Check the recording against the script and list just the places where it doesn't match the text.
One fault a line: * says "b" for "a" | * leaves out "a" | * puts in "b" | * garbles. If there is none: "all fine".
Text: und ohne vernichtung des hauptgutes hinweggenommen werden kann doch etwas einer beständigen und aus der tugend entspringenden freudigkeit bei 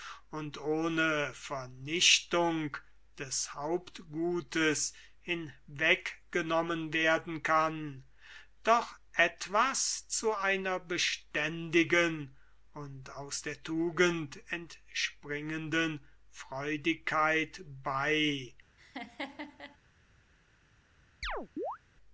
* puts in "zu"